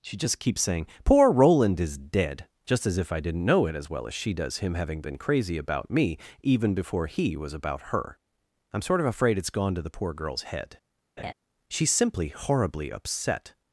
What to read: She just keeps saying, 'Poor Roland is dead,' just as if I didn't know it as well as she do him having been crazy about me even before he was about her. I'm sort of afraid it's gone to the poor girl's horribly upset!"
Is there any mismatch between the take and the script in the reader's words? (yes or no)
yes